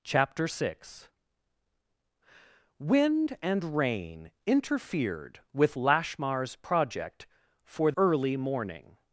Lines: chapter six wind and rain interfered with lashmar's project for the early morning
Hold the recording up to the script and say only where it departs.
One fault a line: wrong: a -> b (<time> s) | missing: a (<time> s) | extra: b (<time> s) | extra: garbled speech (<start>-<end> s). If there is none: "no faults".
missing: the (7.9 s)